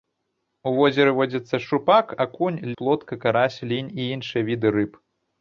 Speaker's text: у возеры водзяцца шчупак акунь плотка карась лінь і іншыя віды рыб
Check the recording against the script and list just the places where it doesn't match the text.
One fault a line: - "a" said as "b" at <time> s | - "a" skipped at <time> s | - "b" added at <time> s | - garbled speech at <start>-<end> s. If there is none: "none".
none